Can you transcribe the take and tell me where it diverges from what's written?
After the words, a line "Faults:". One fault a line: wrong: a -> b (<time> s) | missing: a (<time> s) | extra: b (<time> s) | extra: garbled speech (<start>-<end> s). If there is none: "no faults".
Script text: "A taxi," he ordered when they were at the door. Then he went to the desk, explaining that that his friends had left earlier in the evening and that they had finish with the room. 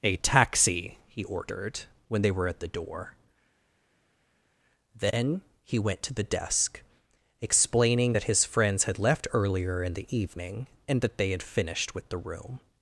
"A taxi," he ordered when they were at the door. Then he went to the desk, explaining that his friends had left earlier in the evening and that they had finished with the room.
Faults:
missing: that (8.2 s)
wrong: finish -> finished (11.4 s)